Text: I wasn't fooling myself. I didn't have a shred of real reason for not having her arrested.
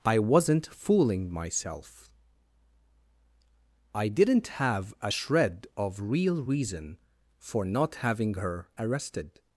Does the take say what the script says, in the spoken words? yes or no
yes